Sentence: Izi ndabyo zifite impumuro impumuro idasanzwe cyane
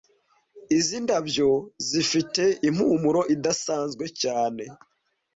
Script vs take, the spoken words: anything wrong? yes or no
yes